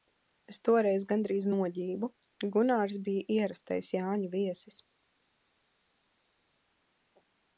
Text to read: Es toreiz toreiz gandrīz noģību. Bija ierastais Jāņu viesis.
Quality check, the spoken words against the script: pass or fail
fail